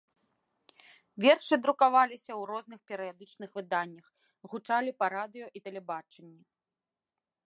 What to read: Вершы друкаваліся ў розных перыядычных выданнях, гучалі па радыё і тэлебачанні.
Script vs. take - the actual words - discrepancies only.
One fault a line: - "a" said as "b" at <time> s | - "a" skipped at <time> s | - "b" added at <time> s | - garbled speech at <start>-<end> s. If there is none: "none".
none